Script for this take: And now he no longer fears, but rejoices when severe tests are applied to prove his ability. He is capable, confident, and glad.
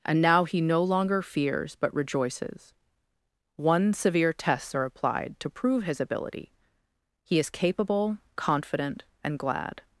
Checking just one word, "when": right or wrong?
wrong